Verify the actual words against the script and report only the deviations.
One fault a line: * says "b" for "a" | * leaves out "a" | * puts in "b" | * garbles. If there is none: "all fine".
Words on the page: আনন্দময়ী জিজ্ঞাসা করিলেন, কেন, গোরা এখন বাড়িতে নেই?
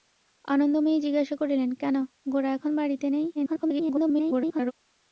* garbles